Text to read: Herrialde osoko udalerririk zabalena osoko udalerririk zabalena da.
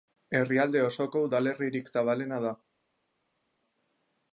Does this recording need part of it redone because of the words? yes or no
yes